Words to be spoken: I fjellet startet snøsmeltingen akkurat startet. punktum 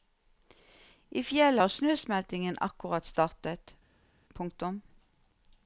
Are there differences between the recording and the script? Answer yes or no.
yes